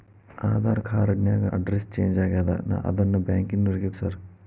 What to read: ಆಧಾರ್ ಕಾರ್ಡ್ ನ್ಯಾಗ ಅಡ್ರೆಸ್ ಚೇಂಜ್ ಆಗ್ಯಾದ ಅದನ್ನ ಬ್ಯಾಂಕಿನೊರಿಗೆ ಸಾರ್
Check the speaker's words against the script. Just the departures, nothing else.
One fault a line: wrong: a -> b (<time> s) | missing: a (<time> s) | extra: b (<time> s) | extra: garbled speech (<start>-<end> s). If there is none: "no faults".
no faults